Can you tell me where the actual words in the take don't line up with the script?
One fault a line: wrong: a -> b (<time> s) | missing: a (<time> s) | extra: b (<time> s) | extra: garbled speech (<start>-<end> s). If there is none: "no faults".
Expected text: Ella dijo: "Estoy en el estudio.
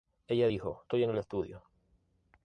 no faults